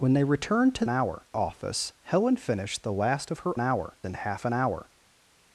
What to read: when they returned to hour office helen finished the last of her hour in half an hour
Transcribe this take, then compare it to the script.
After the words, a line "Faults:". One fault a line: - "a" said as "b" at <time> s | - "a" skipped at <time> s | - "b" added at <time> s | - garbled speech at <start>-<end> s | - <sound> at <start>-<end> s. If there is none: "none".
when they returned to hour office helen finished the last of her hour in half an hour
Faults:
none